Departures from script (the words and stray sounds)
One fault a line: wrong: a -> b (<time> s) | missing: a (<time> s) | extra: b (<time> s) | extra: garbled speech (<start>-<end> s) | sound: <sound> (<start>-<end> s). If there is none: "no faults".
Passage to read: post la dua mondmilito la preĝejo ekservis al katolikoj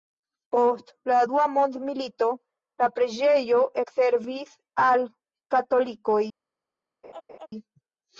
sound: laugh (7.0-7.5 s)